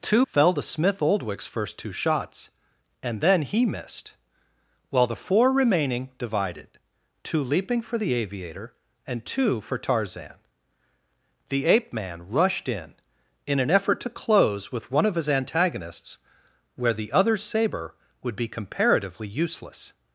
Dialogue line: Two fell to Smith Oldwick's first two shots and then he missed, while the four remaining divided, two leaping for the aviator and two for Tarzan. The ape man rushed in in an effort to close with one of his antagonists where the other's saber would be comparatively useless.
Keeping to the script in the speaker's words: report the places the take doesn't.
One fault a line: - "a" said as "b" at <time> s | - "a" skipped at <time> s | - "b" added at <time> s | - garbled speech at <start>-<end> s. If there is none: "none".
none